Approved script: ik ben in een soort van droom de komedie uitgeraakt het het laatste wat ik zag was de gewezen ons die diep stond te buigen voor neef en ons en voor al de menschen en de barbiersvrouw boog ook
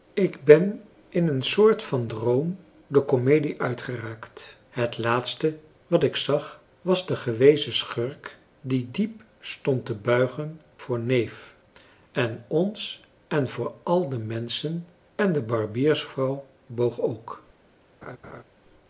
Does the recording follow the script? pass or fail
fail